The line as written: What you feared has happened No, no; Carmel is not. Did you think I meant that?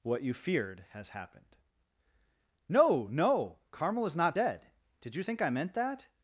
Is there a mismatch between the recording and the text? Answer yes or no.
yes